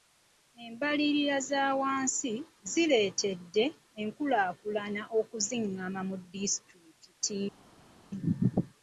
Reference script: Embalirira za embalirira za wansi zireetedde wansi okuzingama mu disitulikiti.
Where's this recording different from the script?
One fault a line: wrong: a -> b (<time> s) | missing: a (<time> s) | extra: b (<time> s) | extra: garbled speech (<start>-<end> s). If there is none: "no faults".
missing: embalirira za (1.6 s)
wrong: wansi -> enkulaakulana (4.0 s)